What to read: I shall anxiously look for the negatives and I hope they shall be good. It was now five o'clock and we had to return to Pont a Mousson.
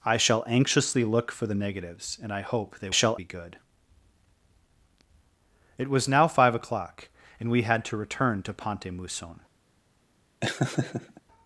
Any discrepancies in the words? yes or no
no